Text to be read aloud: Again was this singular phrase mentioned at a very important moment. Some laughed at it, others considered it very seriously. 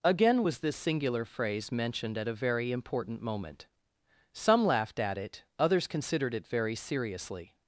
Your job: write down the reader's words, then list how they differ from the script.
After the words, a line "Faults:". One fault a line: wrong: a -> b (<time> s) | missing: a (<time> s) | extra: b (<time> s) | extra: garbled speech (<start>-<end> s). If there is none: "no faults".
Again was this singular phrase mentioned at a very important moment. Some laughed at it, others considered it very seriously.
Faults:
no faults